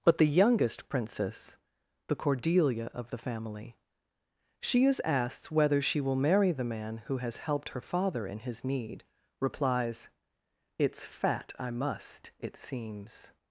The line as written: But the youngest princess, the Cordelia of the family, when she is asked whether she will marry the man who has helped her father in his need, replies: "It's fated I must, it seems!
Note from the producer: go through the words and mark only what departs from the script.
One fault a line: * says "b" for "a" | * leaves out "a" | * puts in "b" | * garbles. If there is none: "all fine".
* leaves out "when"
* says "fat" for "fated"